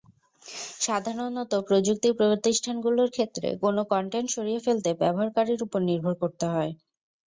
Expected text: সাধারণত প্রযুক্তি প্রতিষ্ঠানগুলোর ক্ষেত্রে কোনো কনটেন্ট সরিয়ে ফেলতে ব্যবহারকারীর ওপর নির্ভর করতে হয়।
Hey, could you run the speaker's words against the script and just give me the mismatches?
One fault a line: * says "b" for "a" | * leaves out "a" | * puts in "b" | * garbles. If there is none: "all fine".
all fine